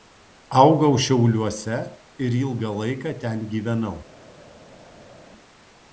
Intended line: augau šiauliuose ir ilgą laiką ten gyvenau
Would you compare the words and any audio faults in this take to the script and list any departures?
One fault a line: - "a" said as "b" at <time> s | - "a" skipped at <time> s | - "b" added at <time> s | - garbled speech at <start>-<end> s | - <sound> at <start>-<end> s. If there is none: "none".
none